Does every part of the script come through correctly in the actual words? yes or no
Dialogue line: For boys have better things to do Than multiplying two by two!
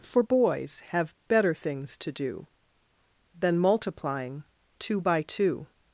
yes